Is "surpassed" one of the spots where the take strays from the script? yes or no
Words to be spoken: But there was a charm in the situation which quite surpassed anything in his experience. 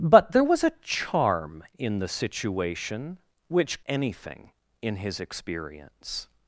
yes